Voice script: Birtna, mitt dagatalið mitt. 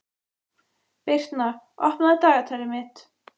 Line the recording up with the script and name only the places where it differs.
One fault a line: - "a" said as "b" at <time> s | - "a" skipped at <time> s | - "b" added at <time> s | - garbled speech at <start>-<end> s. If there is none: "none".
- "mitt" said as "opnaðu" at 1.9 s